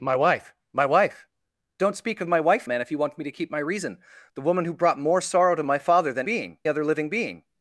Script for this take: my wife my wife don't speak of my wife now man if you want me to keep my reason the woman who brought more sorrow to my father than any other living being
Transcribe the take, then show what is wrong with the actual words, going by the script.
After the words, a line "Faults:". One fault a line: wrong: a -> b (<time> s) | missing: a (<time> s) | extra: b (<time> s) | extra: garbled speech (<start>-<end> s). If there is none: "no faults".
my wife my wife don't speak of my wife man if you want me to keep my reason the woman who brought more sorrow to my father than being other living being
Faults:
missing: now (2.7 s)
wrong: any -> being (6.2 s)